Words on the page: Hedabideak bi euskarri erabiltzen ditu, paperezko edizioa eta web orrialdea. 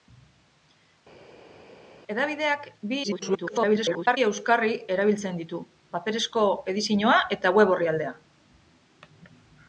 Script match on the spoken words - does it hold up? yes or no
no